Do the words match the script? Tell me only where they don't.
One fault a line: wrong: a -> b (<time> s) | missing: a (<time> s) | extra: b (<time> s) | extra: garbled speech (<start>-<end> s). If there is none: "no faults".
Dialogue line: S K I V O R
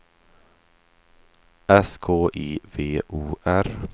no faults